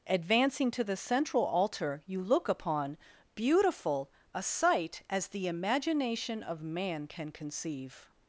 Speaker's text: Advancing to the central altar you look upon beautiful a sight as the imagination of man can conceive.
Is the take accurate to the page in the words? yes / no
yes